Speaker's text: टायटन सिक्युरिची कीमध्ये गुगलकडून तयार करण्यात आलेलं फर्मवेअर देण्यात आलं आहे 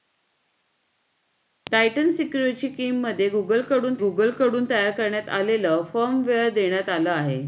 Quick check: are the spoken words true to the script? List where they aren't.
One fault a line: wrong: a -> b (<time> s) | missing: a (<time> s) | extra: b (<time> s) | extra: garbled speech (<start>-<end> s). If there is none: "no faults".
extra: गुगलकडून (4.0 s)